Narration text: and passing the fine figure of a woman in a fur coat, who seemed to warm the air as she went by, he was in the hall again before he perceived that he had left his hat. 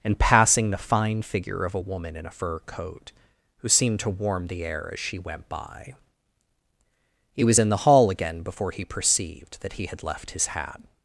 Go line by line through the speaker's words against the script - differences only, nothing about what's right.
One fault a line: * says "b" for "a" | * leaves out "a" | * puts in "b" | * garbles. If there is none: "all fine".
all fine